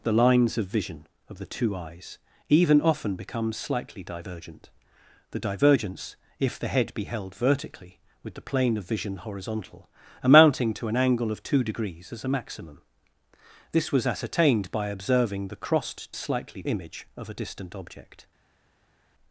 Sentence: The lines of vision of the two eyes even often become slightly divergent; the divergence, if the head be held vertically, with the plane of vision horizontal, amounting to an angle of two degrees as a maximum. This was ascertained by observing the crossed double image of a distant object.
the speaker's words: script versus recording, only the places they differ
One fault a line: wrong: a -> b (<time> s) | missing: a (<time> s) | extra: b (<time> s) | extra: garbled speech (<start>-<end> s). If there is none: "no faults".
wrong: double -> slightly (16.1 s)